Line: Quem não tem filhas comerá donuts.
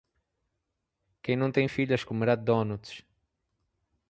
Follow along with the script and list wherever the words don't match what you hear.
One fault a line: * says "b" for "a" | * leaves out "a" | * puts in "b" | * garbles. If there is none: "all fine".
all fine